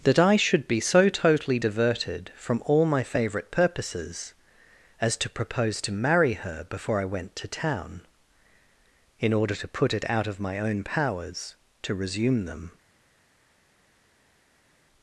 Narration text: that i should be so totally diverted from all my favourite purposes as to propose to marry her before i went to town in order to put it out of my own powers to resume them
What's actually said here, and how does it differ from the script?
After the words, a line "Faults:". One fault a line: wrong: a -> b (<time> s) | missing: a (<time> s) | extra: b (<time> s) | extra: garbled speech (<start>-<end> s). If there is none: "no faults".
that i should be so totally diverted from all my favourite purposes as to propose to marry her before i went to town in order to put it out of my own powers to resume them
Faults:
no faults